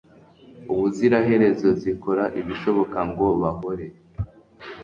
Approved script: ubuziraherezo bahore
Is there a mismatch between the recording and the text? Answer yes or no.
yes